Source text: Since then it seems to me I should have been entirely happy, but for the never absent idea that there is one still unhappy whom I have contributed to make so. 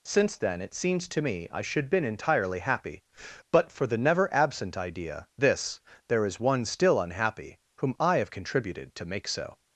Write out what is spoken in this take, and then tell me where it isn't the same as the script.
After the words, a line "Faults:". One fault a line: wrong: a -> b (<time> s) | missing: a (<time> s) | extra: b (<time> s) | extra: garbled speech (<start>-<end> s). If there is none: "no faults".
Since then it seems to me I should been entirely happy, but for the never absent idea this there is one still unhappy whom I have contributed to make so.
Faults:
missing: have (1.9 s)
wrong: that -> this (5.4 s)